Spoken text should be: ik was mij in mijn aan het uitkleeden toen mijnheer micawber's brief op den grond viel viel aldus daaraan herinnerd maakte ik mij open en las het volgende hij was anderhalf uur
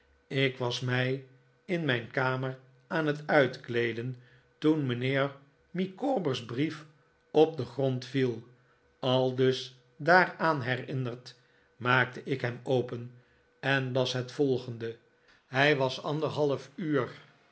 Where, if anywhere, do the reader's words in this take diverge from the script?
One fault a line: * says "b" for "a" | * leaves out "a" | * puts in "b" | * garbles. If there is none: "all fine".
* puts in "kamer"
* leaves out "viel"
* says "hem" for "mij"